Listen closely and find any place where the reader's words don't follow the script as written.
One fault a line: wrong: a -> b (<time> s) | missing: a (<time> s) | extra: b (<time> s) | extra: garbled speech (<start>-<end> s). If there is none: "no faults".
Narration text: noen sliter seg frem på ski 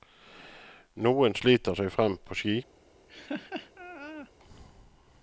no faults